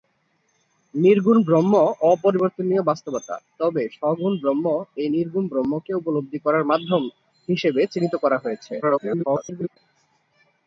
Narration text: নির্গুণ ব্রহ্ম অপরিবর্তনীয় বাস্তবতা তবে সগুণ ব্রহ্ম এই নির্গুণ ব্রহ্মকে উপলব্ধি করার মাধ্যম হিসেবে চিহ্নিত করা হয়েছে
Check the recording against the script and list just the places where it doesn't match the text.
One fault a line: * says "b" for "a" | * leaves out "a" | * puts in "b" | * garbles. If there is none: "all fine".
* garbles